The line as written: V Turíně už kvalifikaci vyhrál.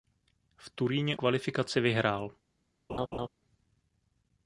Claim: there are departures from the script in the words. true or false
true